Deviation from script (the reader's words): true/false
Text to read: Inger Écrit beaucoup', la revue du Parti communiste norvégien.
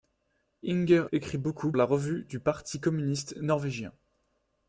false